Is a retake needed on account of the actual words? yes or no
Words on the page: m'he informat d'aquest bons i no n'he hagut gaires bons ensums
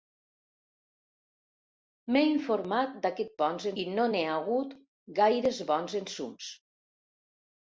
no